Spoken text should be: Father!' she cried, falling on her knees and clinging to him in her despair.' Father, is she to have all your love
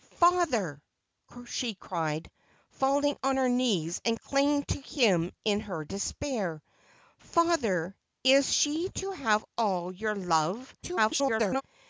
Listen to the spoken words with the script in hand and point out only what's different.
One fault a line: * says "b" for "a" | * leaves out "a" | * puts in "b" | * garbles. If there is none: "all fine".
* garbles